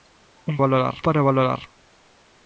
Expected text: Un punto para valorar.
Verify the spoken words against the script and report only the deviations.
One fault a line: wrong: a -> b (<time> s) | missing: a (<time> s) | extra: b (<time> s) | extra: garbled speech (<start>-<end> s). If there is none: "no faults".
wrong: punto -> valorar (0.6 s)